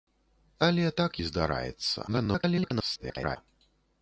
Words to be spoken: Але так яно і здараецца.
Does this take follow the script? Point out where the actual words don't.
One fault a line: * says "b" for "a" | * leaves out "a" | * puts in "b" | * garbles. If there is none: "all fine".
* leaves out "яно"
* garbles